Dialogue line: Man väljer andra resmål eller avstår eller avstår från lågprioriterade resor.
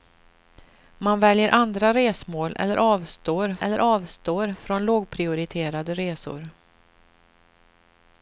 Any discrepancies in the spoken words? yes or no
no